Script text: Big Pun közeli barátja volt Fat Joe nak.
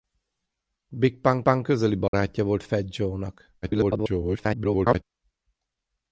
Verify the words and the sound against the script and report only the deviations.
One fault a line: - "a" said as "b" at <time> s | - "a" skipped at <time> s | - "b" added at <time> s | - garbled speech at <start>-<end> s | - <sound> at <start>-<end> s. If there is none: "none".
- "Pun" added at 1.4 s
- dropout at 2.1-2.1 s
- garbled speech at 3.6-5.0 s